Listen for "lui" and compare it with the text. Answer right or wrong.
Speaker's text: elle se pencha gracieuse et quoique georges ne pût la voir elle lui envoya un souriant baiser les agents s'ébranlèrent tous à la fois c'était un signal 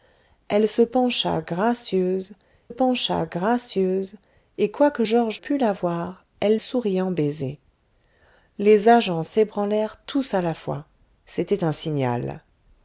wrong